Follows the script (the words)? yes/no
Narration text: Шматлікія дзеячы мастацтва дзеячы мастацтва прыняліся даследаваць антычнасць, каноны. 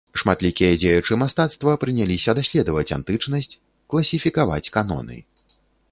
no